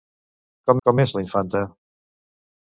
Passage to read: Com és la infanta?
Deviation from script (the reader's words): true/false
true